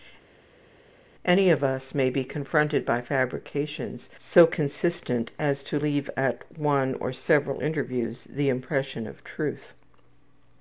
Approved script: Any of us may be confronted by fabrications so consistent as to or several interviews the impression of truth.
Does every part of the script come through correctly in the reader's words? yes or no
no